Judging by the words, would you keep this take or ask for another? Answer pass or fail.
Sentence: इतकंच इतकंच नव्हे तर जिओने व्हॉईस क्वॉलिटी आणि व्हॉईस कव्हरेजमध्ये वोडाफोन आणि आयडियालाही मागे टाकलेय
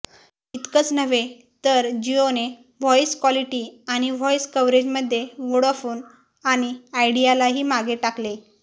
fail